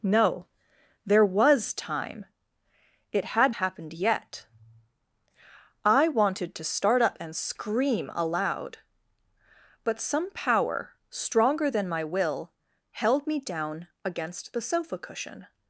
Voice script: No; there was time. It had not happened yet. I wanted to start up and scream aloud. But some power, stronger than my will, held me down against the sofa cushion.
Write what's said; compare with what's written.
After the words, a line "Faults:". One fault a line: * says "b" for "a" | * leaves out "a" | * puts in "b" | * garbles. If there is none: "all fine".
No; there was time. It had happened yet. I wanted to start up and scream aloud. But some power, stronger than my will, held me down against the sofa cushion.
Faults:
* leaves out "not"